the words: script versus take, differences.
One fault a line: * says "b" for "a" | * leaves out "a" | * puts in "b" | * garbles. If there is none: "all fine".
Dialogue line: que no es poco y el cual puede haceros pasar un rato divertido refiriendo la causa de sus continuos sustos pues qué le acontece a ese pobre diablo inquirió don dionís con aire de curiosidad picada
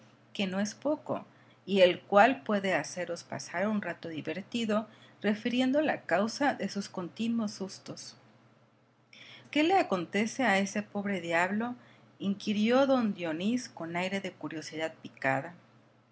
* leaves out "pues"